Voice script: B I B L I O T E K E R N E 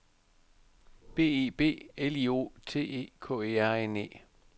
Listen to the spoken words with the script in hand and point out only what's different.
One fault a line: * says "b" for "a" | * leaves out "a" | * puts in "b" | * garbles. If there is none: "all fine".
all fine